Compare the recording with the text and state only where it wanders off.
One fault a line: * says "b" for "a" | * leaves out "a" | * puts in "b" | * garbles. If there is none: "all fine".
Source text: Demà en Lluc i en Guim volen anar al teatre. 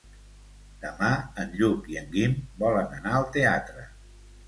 all fine